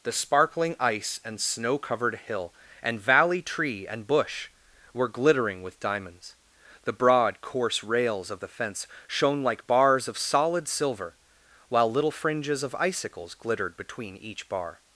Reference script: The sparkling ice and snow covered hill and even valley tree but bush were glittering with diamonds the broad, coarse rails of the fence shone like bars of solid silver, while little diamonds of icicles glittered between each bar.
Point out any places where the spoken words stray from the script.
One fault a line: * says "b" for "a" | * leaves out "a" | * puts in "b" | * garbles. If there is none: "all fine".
* leaves out "even"
* says "and" for "but"
* says "fringes" for "diamonds"